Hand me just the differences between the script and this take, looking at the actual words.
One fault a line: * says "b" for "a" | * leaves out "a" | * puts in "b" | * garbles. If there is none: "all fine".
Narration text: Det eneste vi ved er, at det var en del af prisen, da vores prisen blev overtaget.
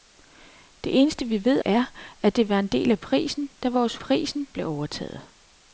all fine